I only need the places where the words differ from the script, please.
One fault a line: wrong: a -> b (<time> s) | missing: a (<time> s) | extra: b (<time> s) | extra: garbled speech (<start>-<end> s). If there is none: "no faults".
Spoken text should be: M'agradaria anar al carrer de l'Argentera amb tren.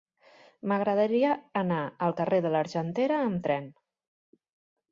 no faults